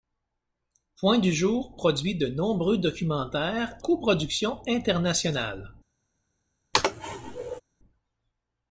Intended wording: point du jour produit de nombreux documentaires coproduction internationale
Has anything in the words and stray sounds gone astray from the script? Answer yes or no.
yes